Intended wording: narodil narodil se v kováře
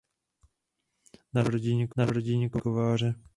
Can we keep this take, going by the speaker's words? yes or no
yes